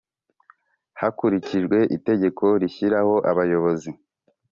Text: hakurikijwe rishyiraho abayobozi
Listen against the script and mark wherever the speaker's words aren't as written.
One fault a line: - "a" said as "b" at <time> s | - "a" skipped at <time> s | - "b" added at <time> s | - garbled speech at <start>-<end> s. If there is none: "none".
- "itegeko" added at 2.0 s